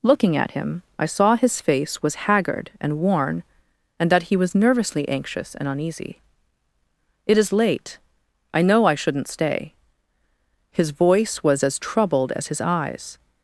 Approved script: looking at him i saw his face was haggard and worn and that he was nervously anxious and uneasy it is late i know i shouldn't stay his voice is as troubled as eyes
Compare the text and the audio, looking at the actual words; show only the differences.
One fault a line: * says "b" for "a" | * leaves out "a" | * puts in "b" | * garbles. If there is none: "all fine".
* says "was" for "is"
* puts in "his"